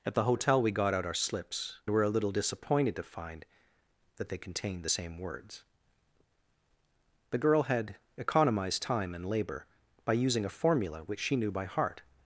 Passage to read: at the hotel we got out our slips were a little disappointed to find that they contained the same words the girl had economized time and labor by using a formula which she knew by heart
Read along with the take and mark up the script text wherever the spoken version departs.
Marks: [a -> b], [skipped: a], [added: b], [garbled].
at the hotel we got out our slips were a little disappointed to find that they contained the same words the girl had economized time and labor by using a formula which she knew by heart